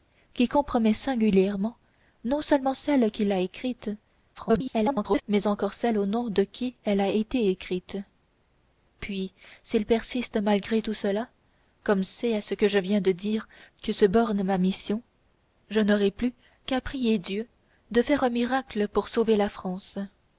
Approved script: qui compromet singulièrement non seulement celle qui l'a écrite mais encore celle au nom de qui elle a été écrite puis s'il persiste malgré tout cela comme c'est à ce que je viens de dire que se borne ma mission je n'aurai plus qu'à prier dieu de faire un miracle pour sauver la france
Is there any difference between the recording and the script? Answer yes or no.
yes